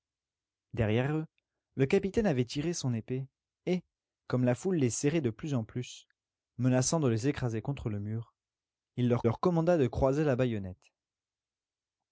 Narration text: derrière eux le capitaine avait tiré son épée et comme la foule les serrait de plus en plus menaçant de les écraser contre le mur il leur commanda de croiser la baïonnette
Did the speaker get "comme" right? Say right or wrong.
right